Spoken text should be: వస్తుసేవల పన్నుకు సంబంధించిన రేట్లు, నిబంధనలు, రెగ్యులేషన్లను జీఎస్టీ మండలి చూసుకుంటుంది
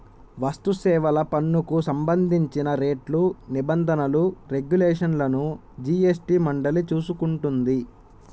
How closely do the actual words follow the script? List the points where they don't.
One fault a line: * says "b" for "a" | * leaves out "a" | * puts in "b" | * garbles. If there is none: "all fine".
all fine